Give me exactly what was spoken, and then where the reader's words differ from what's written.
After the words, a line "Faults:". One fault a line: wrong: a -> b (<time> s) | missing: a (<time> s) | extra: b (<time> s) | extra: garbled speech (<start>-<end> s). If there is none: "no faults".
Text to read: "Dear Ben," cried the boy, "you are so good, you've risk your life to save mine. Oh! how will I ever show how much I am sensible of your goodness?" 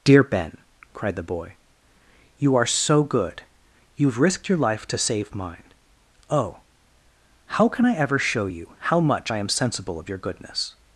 "Dear Ben," cried the boy, "you are so good, you've risked your life to save mine. Oh! how can I ever show you how much I am sensible of your goodness?"
Faults:
wrong: risk -> risked (4.2 s)
wrong: will -> can (7.7 s)
extra: you (8.5 s)